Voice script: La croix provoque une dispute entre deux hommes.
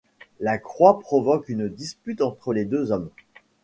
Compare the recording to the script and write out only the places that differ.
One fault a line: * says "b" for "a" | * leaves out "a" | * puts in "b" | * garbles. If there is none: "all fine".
* puts in "les"